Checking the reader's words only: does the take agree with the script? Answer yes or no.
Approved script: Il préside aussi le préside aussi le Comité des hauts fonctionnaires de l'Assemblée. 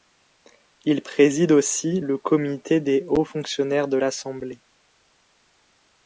no